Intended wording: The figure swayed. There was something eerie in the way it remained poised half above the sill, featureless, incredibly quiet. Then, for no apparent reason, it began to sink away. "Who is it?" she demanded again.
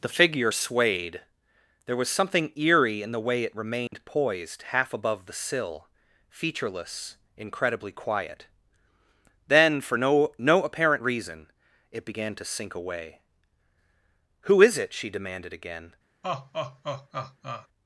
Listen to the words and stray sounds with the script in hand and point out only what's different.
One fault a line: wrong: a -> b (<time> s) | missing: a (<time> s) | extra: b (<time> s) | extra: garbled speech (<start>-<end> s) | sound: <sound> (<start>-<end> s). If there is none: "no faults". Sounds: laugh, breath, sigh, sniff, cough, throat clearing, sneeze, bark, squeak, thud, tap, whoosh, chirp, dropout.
sound: dropout (3.9-3.9 s)
extra: no (10.4 s)
sound: laugh (16.2-17.7 s)